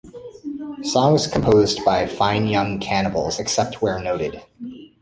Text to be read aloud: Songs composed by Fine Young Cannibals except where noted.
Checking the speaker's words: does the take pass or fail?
pass